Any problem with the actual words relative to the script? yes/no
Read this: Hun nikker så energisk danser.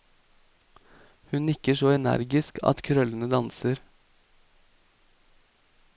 yes